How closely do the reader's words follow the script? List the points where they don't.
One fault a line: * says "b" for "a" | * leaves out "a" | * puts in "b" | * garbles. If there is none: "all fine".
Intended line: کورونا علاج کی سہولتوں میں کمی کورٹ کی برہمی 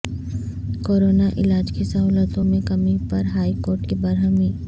* puts in "پر ہائی"